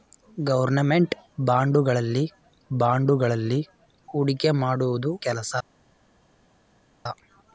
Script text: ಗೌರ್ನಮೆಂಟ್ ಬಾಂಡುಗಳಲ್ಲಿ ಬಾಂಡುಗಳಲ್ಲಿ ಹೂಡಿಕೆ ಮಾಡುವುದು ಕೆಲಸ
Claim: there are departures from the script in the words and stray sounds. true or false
false